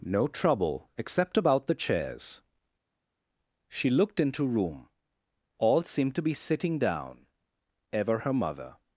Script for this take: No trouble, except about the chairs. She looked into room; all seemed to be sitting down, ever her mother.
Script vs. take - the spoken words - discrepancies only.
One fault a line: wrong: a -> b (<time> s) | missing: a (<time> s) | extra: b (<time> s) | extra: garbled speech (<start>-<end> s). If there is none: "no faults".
no faults